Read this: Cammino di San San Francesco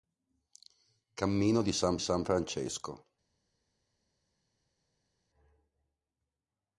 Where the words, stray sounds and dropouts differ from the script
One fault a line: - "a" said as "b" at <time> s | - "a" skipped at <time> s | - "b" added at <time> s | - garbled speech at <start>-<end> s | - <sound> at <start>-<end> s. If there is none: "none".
none